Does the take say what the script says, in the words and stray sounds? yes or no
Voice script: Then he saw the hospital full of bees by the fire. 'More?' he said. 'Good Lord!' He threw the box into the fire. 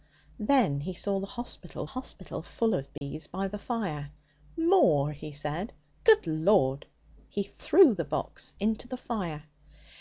no